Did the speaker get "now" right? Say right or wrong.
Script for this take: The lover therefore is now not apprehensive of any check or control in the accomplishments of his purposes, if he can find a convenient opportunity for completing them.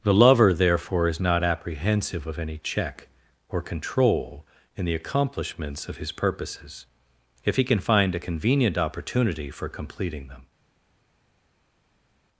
wrong